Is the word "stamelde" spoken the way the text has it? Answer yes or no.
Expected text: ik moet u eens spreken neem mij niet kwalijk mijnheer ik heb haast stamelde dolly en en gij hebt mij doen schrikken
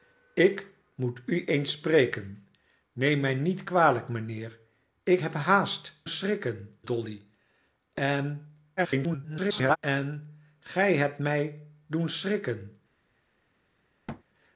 no